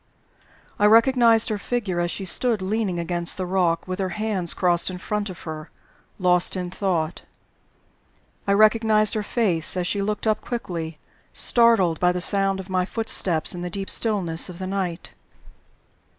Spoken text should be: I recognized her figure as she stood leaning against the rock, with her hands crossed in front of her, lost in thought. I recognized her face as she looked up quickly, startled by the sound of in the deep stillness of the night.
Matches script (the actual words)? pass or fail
fail